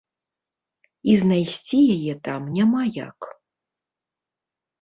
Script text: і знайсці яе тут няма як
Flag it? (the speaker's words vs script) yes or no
yes